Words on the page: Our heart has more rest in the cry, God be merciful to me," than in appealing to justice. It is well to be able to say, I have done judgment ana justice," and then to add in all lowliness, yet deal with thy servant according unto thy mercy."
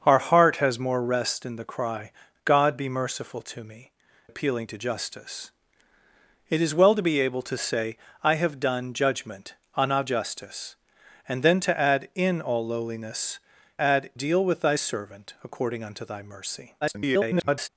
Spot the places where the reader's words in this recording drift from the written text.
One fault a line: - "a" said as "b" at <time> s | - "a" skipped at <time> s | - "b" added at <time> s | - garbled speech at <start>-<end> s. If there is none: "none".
- "than in" skipped at 3.9 s
- "yet" said as "add" at 13.8 s
- garbled speech at 16.8-17.7 s